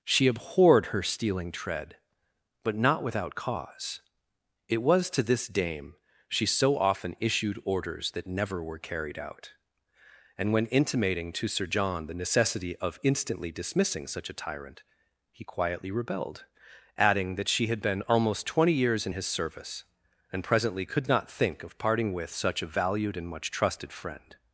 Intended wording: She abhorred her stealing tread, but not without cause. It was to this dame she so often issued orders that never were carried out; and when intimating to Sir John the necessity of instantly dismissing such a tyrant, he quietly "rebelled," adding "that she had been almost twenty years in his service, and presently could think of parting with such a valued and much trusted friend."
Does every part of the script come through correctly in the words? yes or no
no